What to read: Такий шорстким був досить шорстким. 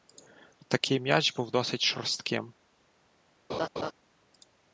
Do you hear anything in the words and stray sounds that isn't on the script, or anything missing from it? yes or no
yes